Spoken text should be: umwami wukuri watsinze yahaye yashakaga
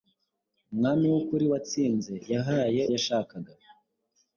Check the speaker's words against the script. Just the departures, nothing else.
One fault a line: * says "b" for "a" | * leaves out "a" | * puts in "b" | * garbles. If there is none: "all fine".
all fine